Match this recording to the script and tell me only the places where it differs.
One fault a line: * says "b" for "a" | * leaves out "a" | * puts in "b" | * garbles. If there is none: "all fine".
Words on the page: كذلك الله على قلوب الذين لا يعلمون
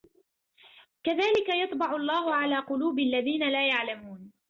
* puts in "يطبع"